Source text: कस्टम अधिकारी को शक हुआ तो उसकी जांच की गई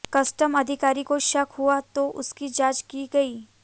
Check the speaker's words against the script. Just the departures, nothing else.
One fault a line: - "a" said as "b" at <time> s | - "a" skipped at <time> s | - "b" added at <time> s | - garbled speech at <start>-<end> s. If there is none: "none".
none